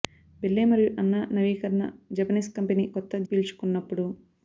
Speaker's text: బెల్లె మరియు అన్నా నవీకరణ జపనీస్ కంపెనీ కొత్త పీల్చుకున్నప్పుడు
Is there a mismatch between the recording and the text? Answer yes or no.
no